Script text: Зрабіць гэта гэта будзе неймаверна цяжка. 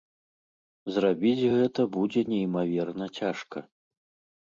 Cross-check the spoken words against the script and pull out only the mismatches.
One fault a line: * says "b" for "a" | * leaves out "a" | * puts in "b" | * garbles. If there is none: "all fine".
* leaves out "гэта"